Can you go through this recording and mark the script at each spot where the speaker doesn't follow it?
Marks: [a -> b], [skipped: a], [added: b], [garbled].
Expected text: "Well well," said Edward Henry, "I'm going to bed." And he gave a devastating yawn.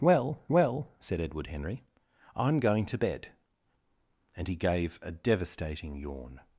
"Well well," said Edward Henry, "I'm going to bed." And he gave a devastating yawn.